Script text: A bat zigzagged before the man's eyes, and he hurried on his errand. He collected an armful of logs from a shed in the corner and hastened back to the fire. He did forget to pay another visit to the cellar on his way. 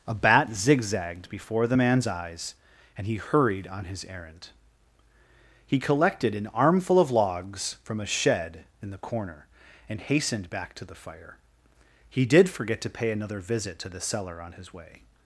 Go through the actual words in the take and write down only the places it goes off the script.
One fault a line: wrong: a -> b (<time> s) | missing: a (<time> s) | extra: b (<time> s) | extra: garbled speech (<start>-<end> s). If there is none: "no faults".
no faults